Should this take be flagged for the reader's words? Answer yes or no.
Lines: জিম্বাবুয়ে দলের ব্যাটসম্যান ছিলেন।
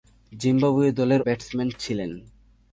no